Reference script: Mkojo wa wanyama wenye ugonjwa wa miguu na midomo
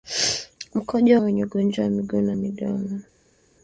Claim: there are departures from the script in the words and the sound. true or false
true